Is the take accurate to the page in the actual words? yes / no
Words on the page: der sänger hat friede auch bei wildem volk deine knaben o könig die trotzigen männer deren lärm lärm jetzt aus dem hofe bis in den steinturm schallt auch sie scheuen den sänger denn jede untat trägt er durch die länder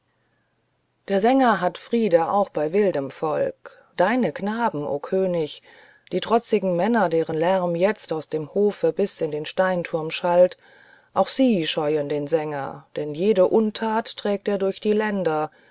no